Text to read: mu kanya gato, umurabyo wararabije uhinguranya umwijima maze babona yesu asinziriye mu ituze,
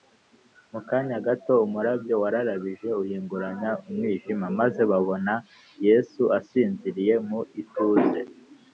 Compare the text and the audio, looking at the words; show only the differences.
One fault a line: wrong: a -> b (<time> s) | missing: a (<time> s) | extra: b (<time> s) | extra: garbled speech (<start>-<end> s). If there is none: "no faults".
no faults